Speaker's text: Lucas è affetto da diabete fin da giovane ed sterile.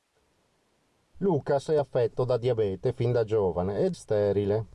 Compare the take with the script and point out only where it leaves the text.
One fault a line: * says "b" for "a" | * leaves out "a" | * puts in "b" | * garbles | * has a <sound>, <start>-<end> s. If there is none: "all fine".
all fine